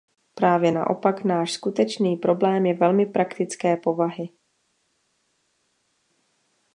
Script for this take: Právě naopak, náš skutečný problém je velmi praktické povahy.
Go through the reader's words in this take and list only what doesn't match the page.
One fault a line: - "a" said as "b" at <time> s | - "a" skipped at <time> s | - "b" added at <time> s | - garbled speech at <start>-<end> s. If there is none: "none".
none